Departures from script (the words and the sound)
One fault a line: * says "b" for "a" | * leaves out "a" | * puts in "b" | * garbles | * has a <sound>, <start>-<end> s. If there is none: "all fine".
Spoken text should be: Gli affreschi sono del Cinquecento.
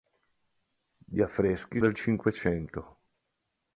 * leaves out "sono"